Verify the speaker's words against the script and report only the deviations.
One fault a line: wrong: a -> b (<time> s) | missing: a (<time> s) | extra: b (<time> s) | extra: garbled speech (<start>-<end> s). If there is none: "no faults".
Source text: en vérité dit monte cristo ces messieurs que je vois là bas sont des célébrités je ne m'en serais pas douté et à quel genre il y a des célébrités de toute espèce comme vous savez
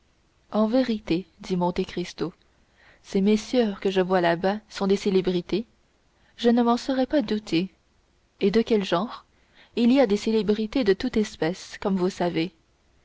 wrong: à -> de (8.5 s)